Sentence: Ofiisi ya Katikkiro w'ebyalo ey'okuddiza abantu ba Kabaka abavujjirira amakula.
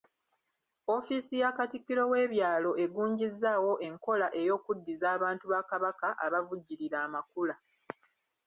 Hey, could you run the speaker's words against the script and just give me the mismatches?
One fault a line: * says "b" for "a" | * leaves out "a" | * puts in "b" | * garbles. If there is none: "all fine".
* puts in "egunjizzaawo enkola"